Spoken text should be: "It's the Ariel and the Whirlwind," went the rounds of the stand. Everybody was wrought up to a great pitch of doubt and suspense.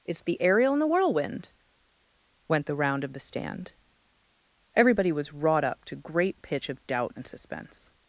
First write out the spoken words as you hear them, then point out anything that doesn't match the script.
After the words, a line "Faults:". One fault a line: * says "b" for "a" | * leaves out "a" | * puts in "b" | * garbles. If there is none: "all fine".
"It's the Ariel and the Whirlwind," went the round of the stand. Everybody was wrought up to great pitch of doubt and suspense.
Faults:
* says "round" for "rounds"
* leaves out "a"